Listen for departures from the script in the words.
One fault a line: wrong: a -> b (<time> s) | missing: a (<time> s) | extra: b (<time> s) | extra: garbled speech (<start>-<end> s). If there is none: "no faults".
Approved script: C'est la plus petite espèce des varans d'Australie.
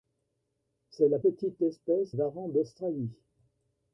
missing: plus (1.2 s)
missing: des (2.2 s)